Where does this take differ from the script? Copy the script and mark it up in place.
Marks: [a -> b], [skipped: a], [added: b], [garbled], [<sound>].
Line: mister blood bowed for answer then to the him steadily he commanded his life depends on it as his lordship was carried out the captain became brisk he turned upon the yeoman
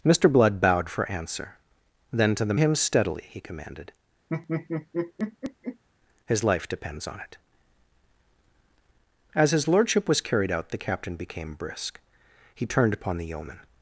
mister blood bowed for answer then to the him steadily he commanded [laugh] his life depends on it as his lordship was carried out the captain became brisk he turned upon the yeoman